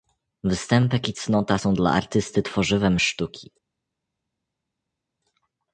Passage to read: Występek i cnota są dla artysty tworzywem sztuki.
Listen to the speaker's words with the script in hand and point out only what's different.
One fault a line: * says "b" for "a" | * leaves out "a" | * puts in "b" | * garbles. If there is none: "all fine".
all fine